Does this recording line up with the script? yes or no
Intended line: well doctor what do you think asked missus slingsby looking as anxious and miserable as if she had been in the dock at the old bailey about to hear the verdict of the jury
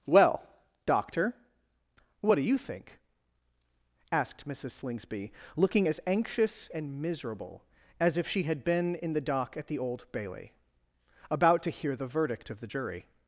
yes